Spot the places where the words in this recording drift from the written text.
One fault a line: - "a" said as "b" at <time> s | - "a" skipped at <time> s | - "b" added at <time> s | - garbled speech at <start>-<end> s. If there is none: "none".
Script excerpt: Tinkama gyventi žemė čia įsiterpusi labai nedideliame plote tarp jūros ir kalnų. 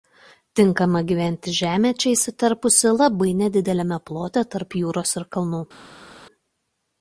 none